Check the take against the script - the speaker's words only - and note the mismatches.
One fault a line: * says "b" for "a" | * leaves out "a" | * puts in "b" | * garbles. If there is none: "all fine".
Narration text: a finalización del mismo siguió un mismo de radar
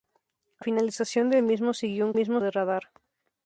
all fine